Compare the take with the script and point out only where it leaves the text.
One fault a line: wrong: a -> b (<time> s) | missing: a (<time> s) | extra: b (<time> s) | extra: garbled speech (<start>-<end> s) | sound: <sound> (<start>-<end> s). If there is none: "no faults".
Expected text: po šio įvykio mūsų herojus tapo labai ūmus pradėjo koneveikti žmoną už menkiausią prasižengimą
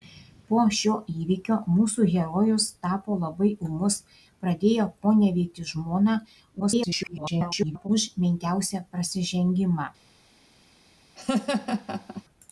extra: garbled speech (6.6-7.9 s)
sound: laugh (11.1-12.2 s)